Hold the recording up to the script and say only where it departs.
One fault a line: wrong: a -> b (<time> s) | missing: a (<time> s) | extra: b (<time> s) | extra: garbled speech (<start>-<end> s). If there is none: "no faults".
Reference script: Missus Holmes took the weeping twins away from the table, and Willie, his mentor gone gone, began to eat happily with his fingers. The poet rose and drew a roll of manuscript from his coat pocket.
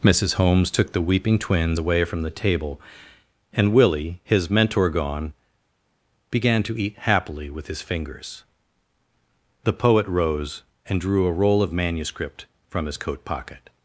missing: gone (5.3 s)